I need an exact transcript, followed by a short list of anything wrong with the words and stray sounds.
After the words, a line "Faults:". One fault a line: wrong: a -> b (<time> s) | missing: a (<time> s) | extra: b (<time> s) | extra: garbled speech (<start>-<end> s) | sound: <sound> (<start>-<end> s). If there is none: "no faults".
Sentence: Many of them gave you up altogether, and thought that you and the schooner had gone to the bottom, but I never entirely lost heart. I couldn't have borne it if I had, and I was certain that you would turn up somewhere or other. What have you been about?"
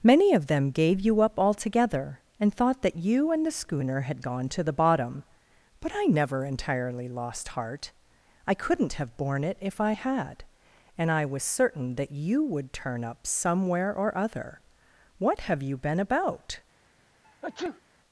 Many of them gave you up altogether, and thought that you and the schooner had gone to the bottom, but I never entirely lost heart. I couldn't have borne it if I had, and I was certain that you would turn up somewhere or other. What have you been about?"
Faults:
sound: sneeze (17.2-17.8 s)